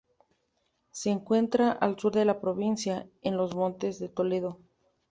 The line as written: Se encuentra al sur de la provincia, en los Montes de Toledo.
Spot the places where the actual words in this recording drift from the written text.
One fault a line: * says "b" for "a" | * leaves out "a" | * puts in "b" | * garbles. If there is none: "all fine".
all fine